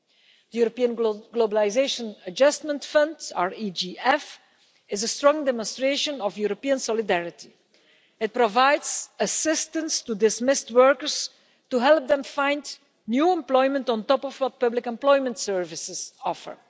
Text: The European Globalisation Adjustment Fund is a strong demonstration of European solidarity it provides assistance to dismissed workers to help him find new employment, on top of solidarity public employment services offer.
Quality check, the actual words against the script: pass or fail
fail